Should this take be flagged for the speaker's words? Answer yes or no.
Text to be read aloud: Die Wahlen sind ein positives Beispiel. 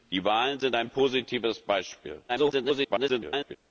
yes